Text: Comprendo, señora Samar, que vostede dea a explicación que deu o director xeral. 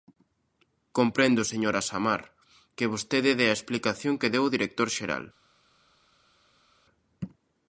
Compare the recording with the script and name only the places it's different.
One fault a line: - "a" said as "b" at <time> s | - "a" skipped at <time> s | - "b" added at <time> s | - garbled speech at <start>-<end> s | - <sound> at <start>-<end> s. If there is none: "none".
none